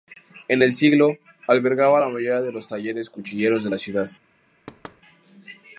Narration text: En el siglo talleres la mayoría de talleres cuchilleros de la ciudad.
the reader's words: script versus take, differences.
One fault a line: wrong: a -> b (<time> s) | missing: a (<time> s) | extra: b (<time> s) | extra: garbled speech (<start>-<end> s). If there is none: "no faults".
wrong: talleres -> albergaba (1.5 s)
extra: los (2.5 s)